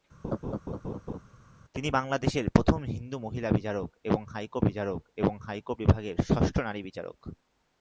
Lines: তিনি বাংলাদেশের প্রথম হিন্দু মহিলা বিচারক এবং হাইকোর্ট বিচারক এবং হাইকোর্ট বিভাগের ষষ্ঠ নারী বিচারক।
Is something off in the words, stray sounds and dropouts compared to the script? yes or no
yes